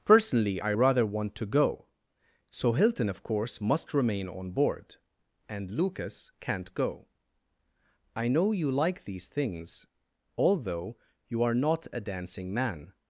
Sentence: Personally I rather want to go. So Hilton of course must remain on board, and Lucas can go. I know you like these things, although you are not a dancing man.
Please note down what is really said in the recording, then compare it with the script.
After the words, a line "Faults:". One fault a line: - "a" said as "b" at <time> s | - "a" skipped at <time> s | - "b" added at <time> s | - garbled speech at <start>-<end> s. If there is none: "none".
Personally I rather want to go. So Hilton of course must remain on board, and Lucas can't go. I know you like these things, although you are not a dancing man.
Faults:
- "can" said as "can't" at 6.4 s